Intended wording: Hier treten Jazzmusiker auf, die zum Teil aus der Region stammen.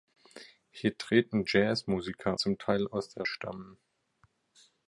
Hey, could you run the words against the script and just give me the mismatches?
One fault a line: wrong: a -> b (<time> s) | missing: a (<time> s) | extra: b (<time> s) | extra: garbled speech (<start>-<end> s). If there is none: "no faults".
missing: auf die (2.4 s)
missing: Region (3.3 s)